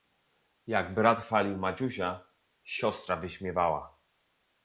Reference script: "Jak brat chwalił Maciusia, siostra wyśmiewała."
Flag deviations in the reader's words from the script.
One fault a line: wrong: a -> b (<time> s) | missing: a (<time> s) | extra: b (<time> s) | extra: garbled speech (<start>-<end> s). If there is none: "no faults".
no faults